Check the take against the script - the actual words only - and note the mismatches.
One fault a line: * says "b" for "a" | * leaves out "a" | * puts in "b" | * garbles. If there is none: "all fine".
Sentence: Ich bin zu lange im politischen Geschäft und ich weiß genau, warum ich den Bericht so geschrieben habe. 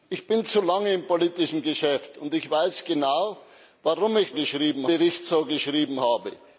* says "geschrieben" for "den"